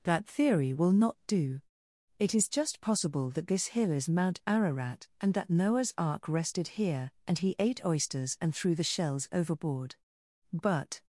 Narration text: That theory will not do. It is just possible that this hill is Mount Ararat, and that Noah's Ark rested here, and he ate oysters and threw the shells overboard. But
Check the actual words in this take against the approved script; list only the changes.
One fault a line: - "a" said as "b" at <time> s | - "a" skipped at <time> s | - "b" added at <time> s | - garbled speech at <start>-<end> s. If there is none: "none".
none